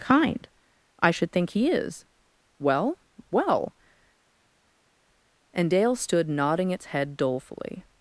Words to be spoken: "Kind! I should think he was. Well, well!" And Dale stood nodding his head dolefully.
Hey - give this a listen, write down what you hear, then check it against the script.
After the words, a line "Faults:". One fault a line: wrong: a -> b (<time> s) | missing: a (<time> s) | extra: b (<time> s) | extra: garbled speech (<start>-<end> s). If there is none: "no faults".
"Kind! I should think he is. Well, well!" And Dale stood nodding its head dolefully.
Faults:
wrong: was -> is (1.7 s)
wrong: his -> its (6.7 s)